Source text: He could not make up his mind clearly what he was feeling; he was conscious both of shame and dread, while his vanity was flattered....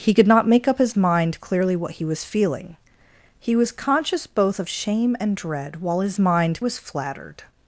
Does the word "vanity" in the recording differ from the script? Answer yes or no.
yes